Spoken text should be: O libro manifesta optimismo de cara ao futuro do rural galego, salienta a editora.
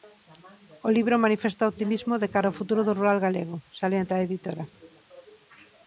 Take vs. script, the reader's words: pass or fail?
pass